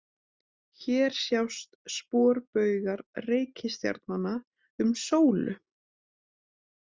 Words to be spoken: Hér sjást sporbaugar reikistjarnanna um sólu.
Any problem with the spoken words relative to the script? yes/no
no